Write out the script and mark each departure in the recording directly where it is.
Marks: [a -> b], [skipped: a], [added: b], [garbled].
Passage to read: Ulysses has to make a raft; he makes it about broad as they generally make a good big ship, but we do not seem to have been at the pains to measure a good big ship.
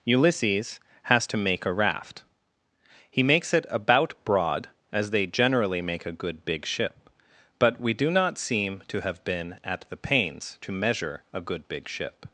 Ulysses has to make a raft; he makes it about broad as they generally make a good big ship, but we do not seem to have been at the pains to measure a good big ship.